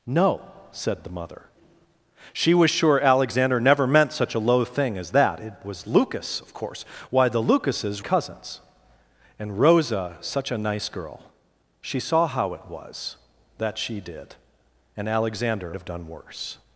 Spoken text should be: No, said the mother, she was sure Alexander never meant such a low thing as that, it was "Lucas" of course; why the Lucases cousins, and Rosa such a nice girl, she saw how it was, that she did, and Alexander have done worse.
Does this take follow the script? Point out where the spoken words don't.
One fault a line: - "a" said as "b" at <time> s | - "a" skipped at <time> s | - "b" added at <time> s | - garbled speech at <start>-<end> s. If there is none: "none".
none